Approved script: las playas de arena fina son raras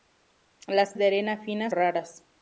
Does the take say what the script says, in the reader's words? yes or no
no